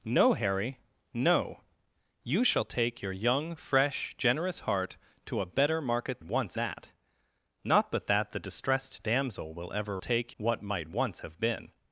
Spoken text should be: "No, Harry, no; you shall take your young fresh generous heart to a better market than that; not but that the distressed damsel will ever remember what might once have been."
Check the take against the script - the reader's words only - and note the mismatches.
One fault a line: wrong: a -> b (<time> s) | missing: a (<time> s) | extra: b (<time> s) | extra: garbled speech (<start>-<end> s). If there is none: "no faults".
wrong: than -> once (6.2 s)
wrong: remember -> take (10.0 s)